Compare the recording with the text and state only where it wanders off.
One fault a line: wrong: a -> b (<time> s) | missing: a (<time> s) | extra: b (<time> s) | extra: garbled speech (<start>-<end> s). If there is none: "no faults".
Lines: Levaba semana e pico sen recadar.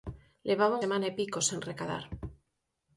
no faults